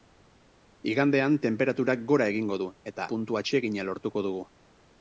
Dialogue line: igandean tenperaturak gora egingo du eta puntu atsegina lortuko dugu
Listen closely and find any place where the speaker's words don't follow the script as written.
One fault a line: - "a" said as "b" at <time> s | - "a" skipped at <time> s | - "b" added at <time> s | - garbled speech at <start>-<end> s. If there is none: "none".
none